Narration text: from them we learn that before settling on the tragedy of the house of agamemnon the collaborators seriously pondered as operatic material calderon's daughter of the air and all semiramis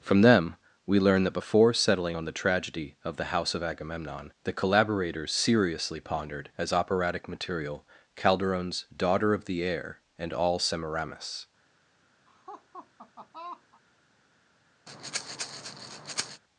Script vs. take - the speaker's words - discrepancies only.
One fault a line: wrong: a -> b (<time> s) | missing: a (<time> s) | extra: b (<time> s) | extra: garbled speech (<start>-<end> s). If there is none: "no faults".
no faults